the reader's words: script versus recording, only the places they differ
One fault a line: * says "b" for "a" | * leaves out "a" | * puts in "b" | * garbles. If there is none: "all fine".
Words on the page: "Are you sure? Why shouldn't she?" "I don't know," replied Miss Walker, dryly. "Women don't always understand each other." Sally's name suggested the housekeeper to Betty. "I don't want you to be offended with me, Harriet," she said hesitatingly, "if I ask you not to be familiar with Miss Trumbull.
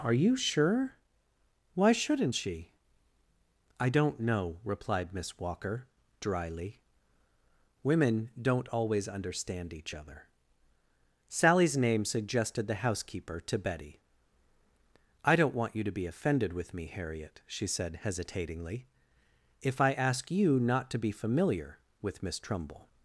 all fine